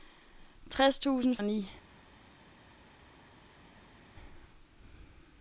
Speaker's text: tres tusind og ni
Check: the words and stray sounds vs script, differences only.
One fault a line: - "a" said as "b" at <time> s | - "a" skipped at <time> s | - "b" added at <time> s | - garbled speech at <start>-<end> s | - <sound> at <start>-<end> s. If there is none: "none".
none